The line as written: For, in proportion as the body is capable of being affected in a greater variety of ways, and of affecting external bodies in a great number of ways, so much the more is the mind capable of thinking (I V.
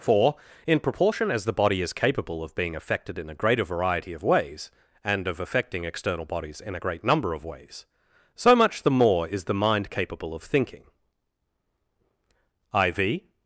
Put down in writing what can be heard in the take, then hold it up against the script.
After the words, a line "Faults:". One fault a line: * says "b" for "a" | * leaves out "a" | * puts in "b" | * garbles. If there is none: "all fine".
For, in proportion as the body is capable of being affected in a greater variety of ways, and of affecting external bodies in a great number of ways, so much the more is the mind capable of thinking (I V.
Faults:
all fine